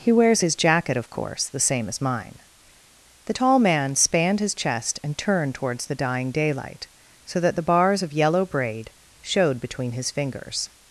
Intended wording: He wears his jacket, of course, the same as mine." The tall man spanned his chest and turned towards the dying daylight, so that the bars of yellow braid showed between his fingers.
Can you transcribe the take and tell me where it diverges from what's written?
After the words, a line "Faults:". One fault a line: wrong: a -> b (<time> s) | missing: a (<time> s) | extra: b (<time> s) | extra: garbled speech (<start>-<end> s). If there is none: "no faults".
He wears his jacket, of course, the same as mine." The tall man spanned his chest and turned towards the dying daylight, so that the bars of yellow braid showed between his fingers.
Faults:
no faults